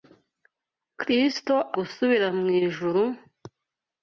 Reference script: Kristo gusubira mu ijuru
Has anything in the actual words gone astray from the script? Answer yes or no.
no